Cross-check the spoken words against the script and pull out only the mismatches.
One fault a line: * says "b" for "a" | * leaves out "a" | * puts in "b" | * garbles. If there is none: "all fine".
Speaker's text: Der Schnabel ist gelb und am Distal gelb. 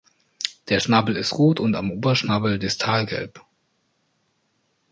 * says "rot" for "gelb"
* puts in "Oberschnabel"